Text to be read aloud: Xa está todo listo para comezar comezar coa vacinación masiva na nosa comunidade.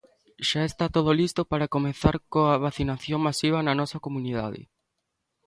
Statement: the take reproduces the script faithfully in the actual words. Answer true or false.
false